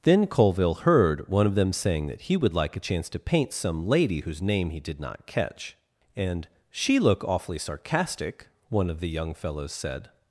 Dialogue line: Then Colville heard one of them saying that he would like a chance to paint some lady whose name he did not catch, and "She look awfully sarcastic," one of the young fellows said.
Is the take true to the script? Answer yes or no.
yes